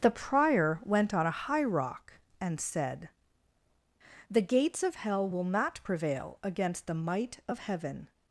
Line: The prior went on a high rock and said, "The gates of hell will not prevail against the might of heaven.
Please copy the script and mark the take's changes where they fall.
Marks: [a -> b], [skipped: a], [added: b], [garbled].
The prior went on a high rock and said, "The gates of hell will not prevail against the might of heaven.